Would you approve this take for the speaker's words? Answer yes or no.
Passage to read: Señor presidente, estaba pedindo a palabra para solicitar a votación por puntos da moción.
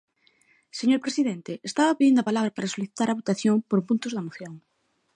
yes